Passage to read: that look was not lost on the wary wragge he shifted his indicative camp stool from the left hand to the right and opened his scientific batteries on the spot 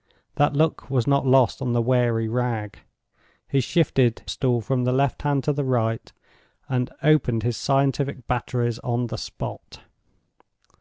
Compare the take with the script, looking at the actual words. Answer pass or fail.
fail